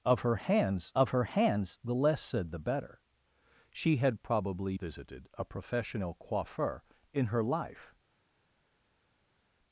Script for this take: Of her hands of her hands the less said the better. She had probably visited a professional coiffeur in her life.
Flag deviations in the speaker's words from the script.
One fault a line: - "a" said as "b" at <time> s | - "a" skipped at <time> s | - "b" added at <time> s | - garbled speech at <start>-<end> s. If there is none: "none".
none